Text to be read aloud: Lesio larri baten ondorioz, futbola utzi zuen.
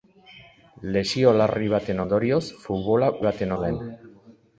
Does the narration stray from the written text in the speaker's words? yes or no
yes